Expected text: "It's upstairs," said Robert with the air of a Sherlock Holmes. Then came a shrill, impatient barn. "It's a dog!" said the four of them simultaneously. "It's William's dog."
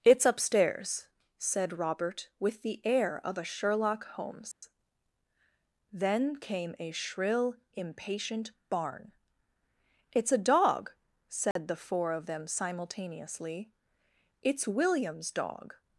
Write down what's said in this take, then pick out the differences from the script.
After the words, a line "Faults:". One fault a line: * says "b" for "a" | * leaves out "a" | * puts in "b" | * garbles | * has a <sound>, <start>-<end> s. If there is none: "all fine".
"It's upstairs," said Robert with the air of a Sherlock Holmes. Then came a shrill, impatient barn. "It's a dog!" said the four of them simultaneously. "It's William's dog."
Faults:
* has a dropout, 4.5-4.6 s
* has a dropout, 11.5-11.6 s